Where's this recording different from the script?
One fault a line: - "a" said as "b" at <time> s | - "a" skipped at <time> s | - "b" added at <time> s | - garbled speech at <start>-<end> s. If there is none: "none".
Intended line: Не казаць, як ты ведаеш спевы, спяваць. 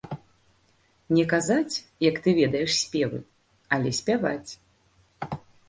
- "але" added at 3.8 s